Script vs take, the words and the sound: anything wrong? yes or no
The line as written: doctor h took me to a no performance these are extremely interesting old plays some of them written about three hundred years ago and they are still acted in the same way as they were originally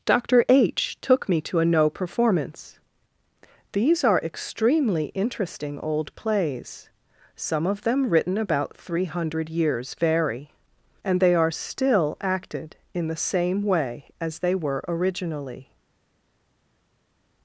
yes